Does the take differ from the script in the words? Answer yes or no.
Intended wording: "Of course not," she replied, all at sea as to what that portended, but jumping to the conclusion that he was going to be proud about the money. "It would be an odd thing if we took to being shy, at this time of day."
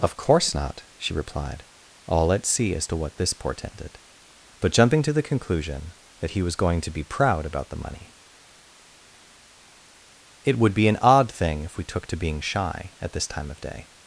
yes